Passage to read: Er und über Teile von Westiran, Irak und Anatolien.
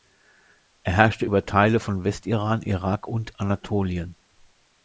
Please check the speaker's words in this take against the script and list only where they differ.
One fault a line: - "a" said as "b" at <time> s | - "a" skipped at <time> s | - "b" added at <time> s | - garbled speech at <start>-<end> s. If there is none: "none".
- "und" said as "herrschte" at 0.9 s